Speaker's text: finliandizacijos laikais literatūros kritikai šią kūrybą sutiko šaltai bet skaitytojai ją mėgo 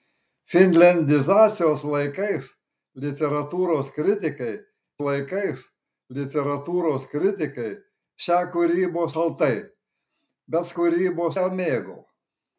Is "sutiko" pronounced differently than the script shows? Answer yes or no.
yes